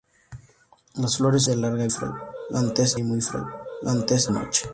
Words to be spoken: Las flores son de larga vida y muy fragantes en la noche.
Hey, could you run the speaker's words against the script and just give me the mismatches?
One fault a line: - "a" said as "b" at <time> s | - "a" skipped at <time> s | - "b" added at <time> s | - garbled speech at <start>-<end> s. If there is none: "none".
- "son" skipped at 1.4 s
- "vida" said as "fragantes" at 1.9 s
- "en la" skipped at 4.3 s